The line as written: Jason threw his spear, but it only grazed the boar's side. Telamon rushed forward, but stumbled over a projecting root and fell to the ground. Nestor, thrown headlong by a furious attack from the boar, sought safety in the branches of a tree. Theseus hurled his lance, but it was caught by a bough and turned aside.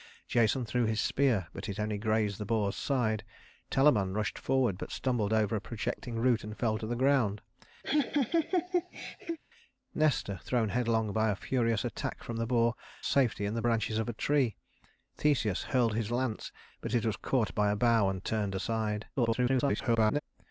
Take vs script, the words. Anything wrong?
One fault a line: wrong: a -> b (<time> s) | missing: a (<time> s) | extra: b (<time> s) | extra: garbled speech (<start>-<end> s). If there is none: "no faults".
missing: sought (12.7 s)
extra: garbled speech (19.2-20.2 s)